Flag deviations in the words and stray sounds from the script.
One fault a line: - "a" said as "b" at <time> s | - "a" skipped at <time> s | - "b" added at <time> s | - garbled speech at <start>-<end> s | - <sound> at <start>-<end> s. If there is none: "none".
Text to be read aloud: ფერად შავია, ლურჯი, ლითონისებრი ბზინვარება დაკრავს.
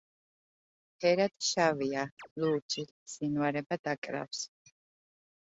- chirp at 2.2-2.3 s
- "ლითონისებრი" skipped at 2.8 s